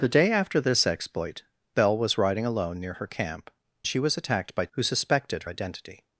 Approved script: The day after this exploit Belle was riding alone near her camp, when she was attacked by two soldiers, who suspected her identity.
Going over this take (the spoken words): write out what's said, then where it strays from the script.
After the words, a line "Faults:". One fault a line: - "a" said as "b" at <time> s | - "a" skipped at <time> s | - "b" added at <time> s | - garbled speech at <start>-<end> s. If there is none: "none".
The day after this exploit Belle was riding alone near her camp, she was attacked by who suspected identity.
Faults:
- "when" skipped at 3.5 s
- "two soldiers" skipped at 4.7 s
- "her" skipped at 5.4 s